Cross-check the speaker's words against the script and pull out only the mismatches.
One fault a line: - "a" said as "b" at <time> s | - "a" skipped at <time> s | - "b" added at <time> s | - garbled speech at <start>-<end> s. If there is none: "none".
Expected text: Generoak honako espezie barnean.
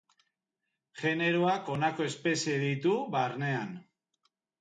- "ditu" added at 2.6 s